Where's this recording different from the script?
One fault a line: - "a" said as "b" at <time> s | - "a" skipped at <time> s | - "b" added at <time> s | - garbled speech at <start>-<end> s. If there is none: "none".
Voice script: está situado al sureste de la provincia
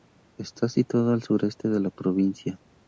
none